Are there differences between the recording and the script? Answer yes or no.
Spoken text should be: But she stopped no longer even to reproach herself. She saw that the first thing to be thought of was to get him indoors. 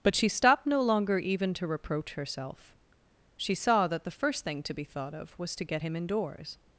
no